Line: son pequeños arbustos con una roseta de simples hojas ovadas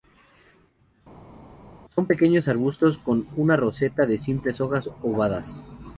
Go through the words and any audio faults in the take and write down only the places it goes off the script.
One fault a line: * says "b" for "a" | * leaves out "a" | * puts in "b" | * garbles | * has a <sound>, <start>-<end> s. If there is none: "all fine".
all fine